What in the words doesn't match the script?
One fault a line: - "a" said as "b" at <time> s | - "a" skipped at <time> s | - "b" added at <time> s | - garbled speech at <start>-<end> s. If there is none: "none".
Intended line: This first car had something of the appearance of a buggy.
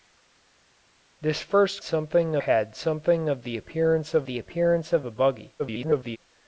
- "car" said as "something" at 1.8 s
- "the appearance of" added at 4.2 s
- garbled speech at 5.6-6.2 s